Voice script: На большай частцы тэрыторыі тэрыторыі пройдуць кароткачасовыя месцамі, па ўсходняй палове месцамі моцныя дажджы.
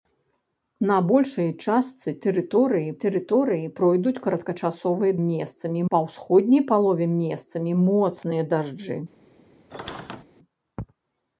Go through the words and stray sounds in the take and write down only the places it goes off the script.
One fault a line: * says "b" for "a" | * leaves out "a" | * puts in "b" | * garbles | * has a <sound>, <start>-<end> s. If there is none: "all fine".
* has a squeak, 9.7-10.2 s